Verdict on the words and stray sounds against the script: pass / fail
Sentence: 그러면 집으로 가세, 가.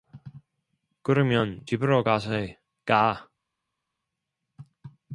pass